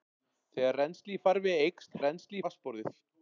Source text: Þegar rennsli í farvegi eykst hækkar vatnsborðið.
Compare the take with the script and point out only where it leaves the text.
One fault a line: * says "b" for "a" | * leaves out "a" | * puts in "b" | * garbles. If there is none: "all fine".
* says "rennsli" for "hækkar"